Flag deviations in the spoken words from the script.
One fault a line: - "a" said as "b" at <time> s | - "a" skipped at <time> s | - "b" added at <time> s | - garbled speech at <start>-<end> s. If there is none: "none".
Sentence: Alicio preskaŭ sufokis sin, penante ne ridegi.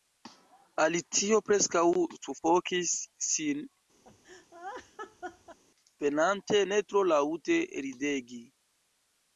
- "tro laŭte" added at 6.9 s